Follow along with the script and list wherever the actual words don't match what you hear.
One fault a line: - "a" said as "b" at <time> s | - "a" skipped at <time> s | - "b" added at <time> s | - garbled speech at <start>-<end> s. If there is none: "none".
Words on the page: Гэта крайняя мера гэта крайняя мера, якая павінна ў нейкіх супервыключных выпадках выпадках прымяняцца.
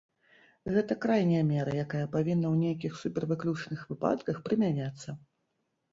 - "гэта крайняя мера" skipped at 1.8 s
- "выпадках" skipped at 4.4 s